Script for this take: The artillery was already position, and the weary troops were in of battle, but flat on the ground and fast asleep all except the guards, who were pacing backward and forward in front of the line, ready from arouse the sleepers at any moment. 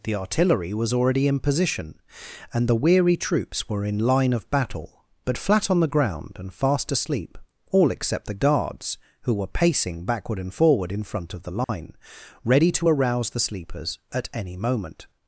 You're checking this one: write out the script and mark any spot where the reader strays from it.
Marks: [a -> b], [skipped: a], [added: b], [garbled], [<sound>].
The artillery was already [added: in] position, and the weary troops were in [added: line] of battle, but flat on the ground and fast asleep all except the guards, who were pacing backward and forward in front of the line, [dropout] ready [from -> to] arouse the sleepers at any moment.